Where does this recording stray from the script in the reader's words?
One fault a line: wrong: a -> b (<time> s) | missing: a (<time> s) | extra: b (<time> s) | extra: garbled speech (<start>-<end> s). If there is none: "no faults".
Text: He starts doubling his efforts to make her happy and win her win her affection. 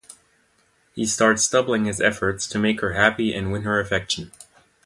missing: win her (3.8 s)